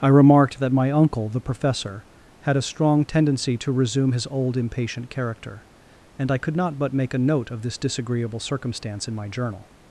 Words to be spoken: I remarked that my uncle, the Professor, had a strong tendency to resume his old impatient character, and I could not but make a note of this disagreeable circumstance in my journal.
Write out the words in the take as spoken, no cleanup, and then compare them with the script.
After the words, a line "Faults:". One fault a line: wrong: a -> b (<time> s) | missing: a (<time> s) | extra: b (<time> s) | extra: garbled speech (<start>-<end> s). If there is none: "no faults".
I remarked that my uncle, the Professor, had a strong tendency to resume his old impatient character, and I could not but make a note of this disagreeable circumstance in my journal.
Faults:
no faults